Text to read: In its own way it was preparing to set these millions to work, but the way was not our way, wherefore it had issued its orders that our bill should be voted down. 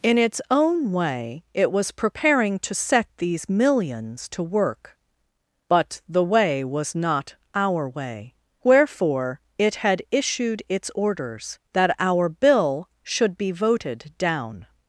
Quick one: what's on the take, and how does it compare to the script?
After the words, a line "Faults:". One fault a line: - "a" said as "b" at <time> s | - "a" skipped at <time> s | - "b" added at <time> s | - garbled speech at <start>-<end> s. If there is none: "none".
In its own way it was preparing to set these millions to work, but the way was not our way, wherefore it had issued its orders that our bill should be voted down.
Faults:
none